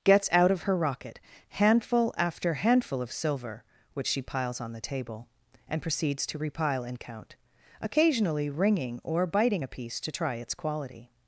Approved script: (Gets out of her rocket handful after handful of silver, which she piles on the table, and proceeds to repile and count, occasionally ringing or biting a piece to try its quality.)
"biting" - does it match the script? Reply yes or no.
yes